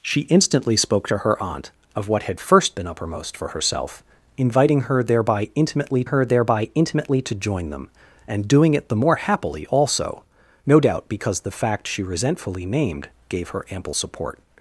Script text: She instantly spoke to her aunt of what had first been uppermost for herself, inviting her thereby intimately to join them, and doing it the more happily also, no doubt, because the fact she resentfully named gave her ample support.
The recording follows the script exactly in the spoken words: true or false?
false